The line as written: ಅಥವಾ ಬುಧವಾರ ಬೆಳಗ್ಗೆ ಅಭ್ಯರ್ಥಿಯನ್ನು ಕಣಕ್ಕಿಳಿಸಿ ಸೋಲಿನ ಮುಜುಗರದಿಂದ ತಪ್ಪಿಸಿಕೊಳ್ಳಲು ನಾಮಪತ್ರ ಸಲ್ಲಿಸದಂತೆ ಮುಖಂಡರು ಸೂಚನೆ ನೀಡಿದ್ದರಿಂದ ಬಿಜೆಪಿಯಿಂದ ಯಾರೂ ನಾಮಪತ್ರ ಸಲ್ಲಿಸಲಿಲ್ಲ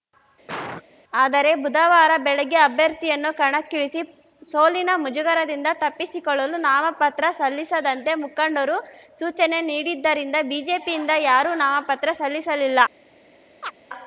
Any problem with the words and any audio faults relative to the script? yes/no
yes